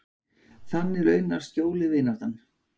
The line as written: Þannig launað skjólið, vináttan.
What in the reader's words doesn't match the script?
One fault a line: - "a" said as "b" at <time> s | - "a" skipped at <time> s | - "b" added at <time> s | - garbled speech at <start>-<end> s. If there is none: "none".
none